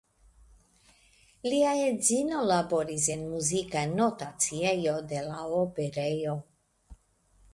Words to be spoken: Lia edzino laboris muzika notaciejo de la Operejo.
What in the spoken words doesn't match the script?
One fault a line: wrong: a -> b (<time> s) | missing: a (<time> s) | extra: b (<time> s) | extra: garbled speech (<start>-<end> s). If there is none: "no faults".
extra: en (3.2 s)